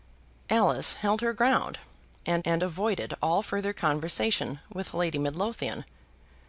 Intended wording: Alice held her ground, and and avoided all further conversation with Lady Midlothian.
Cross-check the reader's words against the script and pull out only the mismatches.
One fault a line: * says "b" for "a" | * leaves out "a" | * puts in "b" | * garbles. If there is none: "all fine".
all fine